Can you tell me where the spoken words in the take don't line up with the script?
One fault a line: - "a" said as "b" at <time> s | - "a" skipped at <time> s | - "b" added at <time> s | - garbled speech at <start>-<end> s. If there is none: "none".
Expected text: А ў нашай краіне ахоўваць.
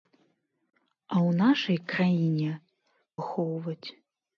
none